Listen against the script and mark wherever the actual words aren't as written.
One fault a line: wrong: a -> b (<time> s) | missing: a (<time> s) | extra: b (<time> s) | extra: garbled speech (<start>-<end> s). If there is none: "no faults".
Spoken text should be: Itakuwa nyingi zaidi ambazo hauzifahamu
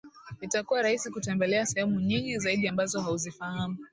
extra: rahisi kutembelea sehemu (0.8 s)